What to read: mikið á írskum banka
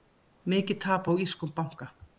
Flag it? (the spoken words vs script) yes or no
yes